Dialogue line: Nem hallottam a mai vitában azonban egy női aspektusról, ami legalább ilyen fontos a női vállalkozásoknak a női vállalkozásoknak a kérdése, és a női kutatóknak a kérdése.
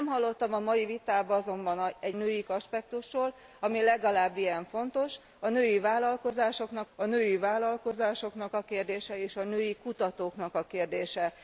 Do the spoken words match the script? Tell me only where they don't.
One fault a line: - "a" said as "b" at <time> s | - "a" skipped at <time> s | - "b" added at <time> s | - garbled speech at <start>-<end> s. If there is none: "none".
none